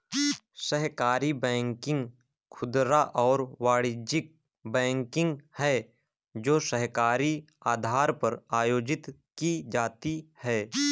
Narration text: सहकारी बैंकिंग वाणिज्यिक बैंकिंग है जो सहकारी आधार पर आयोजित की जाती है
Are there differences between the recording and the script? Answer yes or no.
yes